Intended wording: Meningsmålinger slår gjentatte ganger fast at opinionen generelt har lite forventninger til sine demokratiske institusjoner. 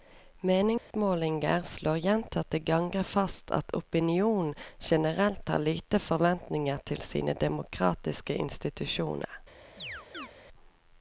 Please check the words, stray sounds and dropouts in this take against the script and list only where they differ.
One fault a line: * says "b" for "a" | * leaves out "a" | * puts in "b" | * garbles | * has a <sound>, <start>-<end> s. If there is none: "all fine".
* has a dropout, 0.8-0.9 s
* has a chirp, 9.8-10.3 s